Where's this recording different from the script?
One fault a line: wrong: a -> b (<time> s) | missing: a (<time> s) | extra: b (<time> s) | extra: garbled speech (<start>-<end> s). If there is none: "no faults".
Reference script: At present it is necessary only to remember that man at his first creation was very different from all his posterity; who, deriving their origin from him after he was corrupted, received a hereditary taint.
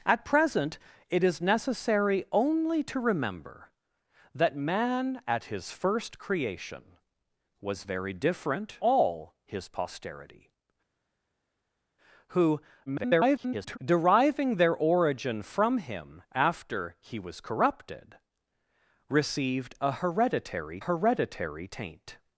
missing: from (8.8 s)
extra: garbled speech (12.9-13.8 s)
extra: hereditary (20.8 s)